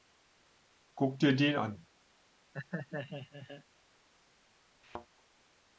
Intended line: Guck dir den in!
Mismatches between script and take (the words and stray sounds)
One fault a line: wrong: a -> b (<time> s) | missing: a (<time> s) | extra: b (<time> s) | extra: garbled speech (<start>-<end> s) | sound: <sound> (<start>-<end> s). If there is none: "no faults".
wrong: in -> an (1.6 s)
sound: laugh (2.5-3.6 s)
sound: thud (4.8-5.1 s)